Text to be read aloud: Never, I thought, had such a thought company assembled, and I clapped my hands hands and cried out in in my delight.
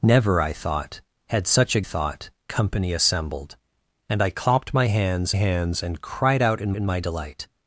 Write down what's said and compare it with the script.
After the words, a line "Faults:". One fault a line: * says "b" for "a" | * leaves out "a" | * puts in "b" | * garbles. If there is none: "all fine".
Never, I thought, had such a thought company assembled, and I clapped my hands hands and cried out in in my delight.
Faults:
all fine